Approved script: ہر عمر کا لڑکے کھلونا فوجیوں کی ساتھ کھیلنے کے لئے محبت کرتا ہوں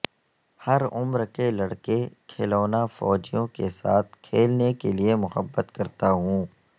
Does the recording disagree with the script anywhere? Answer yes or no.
yes